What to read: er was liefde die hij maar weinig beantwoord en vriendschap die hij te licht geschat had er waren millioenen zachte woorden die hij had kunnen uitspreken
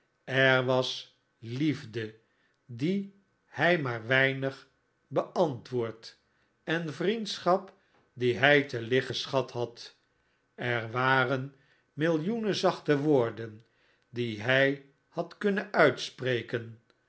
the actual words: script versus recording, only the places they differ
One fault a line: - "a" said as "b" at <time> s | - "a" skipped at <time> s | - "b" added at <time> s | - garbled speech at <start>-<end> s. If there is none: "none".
none